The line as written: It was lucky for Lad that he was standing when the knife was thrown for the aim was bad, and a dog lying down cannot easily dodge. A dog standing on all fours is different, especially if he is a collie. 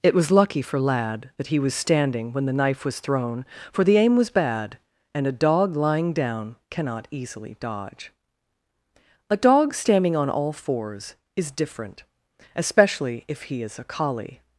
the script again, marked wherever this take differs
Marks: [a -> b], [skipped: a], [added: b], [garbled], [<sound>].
It was lucky for Lad that he was standing when the knife was thrown for the aim was bad, and a dog lying down cannot easily dodge. A dog standing on all fours is different, especially if he is a collie.